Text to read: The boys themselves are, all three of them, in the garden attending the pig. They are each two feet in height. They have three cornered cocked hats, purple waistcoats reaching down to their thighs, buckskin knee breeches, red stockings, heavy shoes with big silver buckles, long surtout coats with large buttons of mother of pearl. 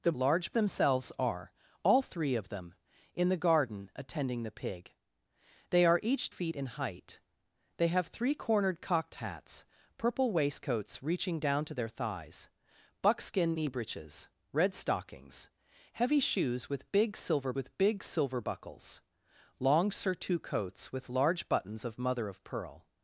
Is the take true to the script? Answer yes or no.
no